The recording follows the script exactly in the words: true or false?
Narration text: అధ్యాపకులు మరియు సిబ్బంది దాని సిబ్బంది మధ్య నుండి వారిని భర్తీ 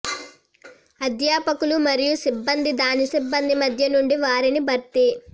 true